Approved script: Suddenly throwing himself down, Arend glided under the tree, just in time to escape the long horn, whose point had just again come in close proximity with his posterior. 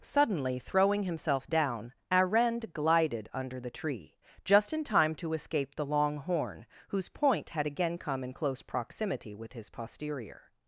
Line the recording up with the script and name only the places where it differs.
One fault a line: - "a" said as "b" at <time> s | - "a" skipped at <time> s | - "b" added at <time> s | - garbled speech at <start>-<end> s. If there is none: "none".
- "just" skipped at 7.7 s